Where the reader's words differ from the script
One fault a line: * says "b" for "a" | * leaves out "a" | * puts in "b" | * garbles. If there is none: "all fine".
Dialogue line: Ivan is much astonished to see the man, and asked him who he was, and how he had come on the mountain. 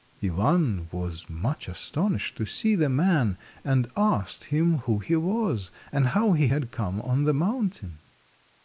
* says "was" for "is"